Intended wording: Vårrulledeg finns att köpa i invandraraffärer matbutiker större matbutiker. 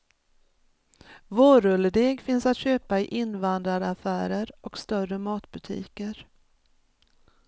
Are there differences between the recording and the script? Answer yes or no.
yes